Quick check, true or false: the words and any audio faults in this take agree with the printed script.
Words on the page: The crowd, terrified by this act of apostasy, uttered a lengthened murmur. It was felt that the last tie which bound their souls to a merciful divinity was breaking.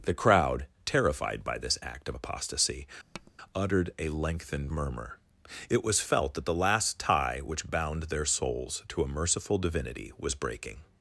false